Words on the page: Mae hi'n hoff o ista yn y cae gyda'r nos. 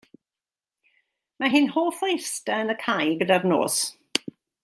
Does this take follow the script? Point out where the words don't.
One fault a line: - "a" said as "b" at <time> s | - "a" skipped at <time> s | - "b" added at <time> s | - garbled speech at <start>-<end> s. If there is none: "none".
none